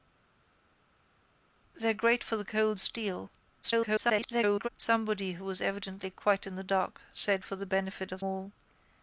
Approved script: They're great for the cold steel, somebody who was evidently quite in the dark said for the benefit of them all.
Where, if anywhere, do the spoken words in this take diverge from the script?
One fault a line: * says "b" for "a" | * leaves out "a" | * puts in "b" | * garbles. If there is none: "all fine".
* garbles
* leaves out "them"